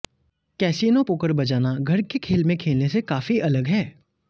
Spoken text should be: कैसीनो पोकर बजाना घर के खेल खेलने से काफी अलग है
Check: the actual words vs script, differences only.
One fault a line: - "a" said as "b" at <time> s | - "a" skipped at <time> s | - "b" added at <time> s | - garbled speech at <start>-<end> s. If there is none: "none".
- "में" added at 2.4 s